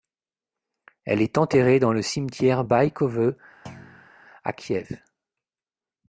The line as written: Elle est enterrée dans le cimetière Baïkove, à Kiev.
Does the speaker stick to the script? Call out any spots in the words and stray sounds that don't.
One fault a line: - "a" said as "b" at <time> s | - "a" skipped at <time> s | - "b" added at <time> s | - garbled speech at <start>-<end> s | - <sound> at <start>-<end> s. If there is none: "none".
- thud at 3.7-4.1 s